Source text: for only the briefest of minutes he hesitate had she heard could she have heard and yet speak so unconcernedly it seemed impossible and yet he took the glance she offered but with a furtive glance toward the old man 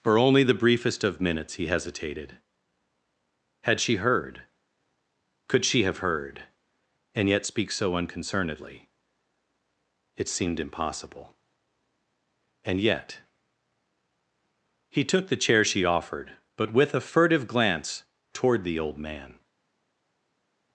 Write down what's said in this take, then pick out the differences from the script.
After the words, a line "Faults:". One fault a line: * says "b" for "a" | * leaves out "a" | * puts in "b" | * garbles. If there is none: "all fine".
for only the briefest of minutes he hesitated had she heard could she have heard and yet speak so unconcernedly it seemed impossible and yet he took the chair she offered but with a furtive glance toward the old man
Faults:
* says "hesitated" for "hesitate"
* says "chair" for "glance"